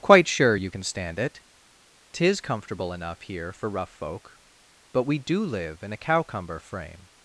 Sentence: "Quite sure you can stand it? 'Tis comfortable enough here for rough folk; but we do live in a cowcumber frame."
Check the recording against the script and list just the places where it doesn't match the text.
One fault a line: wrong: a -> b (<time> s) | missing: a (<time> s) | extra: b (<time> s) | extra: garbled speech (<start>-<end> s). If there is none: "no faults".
no faults